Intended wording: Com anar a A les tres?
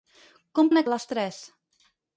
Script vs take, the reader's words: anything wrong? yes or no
no